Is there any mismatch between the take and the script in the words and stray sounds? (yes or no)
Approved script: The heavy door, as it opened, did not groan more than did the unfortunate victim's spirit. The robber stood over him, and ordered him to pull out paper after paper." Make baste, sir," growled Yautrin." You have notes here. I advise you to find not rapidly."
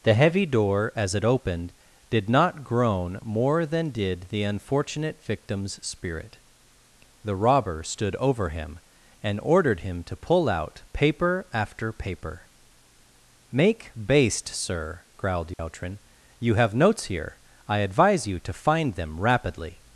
yes